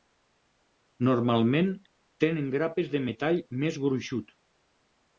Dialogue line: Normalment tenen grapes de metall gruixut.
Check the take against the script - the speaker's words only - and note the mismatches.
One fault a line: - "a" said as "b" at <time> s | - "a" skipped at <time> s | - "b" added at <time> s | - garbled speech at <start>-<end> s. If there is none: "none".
- "més" added at 3.6 s